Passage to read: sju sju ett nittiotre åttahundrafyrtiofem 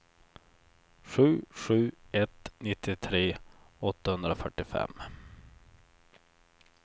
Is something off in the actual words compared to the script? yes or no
no